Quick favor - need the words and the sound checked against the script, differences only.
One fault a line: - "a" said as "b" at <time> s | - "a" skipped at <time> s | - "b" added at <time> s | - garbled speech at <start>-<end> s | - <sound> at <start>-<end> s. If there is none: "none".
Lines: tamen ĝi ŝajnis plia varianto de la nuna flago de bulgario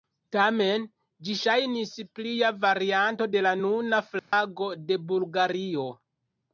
- dropout at 4.2-4.3 s